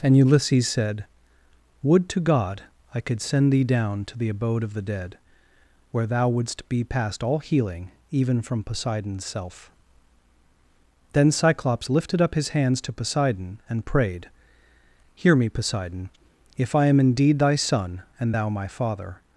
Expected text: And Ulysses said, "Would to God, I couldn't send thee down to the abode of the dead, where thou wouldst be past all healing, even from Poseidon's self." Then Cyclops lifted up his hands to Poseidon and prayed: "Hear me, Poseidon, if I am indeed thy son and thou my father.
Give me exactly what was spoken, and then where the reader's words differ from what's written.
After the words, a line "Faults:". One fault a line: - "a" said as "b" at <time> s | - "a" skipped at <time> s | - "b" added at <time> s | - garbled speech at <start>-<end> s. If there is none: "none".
And Ulysses said, "Would to God, I could send thee down to the abode of the dead, where thou wouldst be past all healing, even from Poseidon's self." Then Cyclops lifted up his hands to Poseidon and prayed: "Hear me, Poseidon, if I am indeed thy son and thou my father.
Faults:
- "couldn't" said as "could" at 3.0 s